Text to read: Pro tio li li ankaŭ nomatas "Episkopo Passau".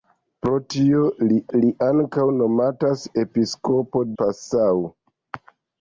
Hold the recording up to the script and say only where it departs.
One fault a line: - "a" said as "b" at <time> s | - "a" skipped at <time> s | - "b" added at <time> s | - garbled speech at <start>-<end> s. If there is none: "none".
none